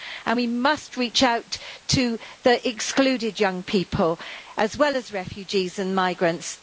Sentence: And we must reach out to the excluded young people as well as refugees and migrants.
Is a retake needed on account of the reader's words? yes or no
no